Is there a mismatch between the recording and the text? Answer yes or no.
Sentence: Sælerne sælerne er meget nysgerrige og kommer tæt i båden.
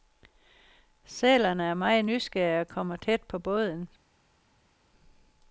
yes